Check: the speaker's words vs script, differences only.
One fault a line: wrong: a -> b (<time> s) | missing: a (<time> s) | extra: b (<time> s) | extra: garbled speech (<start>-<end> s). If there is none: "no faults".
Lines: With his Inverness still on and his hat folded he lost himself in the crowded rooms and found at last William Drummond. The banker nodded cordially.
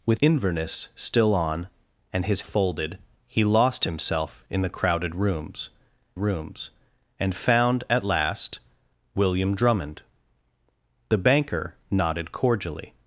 missing: his (0.2 s)
missing: hat (2.4 s)
extra: rooms (6.2 s)